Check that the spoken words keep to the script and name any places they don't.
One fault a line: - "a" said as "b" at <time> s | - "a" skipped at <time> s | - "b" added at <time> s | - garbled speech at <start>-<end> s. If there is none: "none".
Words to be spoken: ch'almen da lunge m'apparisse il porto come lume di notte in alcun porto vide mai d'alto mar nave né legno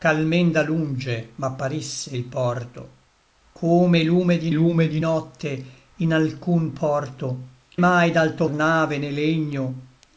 - "lume di" added at 4.5 s
- "vide" skipped at 7.5 s
- "mar" skipped at 8.5 s